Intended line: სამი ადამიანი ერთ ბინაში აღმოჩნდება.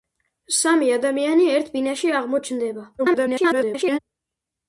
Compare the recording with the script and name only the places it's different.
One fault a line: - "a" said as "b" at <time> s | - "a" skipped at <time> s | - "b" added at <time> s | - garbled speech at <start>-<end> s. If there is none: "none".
- garbled speech at 3.0-4.0 s